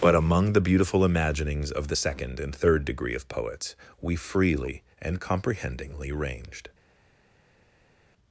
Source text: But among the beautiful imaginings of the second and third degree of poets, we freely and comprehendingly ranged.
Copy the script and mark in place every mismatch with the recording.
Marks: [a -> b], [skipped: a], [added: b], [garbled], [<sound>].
But among the beautiful imaginings of the second and third degree of poets, we freely and comprehendingly ranged.